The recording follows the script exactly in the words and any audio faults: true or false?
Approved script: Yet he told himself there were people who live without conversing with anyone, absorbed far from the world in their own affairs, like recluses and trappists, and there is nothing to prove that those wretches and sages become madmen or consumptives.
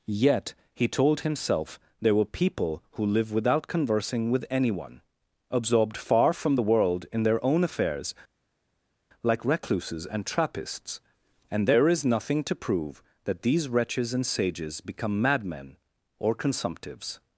false